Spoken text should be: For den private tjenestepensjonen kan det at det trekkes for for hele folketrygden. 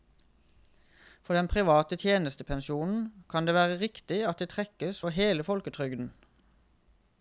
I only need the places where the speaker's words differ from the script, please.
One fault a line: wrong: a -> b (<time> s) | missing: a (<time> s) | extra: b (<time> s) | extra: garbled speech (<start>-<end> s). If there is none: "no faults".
extra: være riktig (3.6 s)
missing: for (5.2 s)